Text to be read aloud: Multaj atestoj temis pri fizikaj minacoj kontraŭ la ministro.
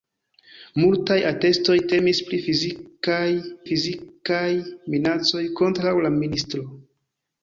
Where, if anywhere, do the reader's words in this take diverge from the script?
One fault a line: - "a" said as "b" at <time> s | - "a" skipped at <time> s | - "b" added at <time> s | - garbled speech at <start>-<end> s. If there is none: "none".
- "fizikaj" added at 3.7 s